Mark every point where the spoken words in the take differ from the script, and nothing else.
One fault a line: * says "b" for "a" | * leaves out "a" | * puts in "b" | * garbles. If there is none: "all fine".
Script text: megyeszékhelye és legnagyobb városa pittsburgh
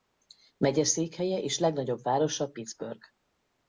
all fine